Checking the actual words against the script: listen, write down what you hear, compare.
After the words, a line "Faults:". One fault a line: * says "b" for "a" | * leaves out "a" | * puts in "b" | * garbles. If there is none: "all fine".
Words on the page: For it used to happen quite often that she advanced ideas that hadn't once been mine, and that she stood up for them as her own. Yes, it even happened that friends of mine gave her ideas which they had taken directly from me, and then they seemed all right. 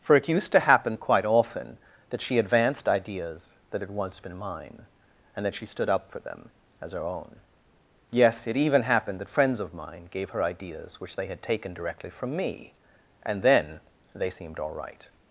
For it used to happen quite often that she advanced ideas that had once been mine, and that she stood up for them as her own. Yes, it even happened that friends of mine gave her ideas which they had taken directly from me, and then they seemed all right.
Faults:
* says "had" for "hadn't"